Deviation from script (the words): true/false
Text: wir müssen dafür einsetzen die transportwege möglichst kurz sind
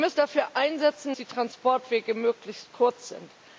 false